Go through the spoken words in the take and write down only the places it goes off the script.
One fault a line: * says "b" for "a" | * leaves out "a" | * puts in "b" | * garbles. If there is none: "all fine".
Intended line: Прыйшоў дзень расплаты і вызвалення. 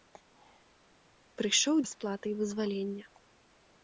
* leaves out "дзень"